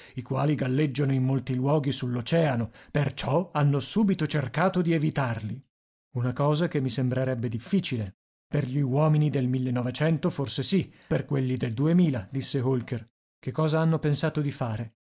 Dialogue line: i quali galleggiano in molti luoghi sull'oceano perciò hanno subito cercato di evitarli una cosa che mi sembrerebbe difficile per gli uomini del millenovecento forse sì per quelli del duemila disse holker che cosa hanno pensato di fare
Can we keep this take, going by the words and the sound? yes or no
yes